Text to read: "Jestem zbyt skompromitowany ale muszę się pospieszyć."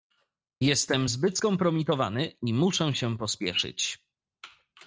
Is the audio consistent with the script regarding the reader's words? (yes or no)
no